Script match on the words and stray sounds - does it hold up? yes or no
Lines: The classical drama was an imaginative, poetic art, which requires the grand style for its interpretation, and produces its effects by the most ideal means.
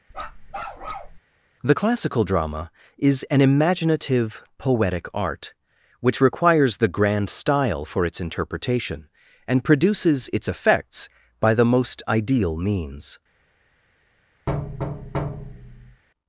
no